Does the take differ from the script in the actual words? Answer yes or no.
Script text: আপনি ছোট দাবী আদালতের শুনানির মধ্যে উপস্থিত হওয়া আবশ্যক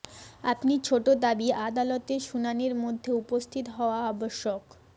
no